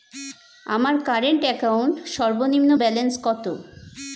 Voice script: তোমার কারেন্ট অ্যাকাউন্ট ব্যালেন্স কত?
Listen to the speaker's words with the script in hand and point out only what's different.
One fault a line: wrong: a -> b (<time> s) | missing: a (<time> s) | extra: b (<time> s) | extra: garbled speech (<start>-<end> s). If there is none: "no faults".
wrong: তোমার -> আমার (0.7 s)
extra: সর্বনিম্ন (2.1 s)